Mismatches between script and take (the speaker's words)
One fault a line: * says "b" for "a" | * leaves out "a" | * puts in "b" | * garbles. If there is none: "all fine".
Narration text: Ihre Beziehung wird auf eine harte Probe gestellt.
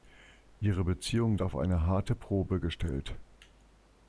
* leaves out "wird"